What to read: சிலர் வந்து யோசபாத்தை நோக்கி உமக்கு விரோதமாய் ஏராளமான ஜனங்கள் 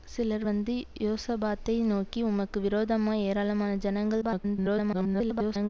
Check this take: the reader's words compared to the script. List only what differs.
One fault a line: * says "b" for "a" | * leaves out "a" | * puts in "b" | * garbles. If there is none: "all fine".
* garbles